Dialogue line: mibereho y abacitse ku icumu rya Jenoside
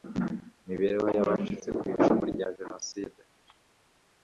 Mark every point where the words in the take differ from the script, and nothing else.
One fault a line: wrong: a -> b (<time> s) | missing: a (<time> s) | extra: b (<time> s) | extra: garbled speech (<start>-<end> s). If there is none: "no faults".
no faults